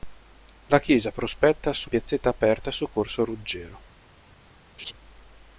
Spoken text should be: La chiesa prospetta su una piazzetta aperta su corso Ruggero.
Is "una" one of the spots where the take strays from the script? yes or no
yes